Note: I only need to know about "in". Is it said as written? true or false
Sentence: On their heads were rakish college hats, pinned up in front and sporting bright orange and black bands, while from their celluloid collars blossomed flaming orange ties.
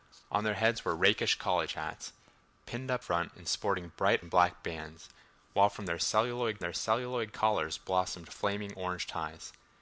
false